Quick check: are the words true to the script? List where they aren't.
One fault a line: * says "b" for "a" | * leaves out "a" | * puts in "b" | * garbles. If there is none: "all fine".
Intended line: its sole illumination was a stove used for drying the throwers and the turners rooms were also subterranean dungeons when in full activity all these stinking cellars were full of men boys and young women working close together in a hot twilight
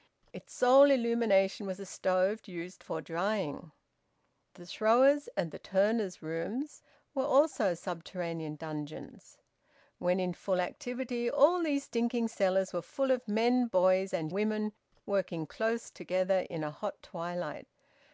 * leaves out "young"